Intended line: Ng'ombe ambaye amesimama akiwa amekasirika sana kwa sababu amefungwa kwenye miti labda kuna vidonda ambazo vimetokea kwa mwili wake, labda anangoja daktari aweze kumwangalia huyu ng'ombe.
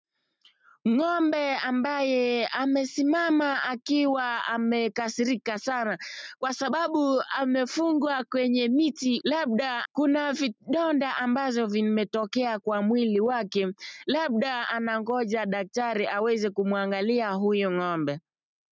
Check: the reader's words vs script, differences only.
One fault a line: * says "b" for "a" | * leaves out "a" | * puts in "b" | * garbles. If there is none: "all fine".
all fine